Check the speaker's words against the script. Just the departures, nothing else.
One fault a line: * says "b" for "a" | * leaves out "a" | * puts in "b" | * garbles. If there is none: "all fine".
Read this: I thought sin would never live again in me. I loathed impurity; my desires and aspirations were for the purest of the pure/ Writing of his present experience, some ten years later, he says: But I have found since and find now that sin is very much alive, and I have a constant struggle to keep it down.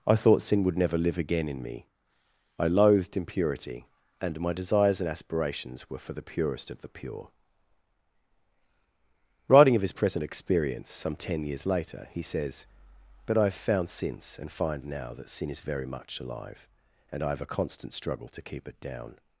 * puts in "and"